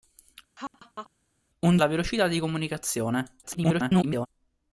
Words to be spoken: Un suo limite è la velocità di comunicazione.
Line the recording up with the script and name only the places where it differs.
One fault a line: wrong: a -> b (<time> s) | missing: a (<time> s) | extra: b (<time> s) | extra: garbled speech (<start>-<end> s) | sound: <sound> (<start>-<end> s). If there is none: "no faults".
sound: laugh (0.6-1.1 s)
missing: suo limite è (1.8 s)
extra: garbled speech (3.4-4.3 s)